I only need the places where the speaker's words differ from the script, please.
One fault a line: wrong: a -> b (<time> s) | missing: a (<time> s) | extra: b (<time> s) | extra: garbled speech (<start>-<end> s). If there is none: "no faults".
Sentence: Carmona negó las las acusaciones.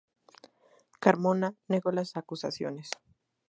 missing: las (2.2 s)